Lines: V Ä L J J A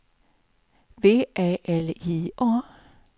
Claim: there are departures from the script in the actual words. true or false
true